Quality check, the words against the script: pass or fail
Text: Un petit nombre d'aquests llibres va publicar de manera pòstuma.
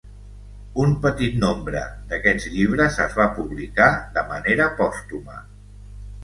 fail